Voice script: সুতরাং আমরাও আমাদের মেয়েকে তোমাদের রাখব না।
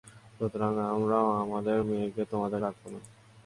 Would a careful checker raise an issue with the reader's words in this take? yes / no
no